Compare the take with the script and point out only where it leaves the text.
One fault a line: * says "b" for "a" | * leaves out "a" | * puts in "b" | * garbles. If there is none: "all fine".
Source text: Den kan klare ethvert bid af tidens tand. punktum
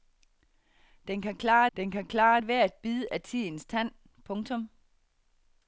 * puts in "den kan klare"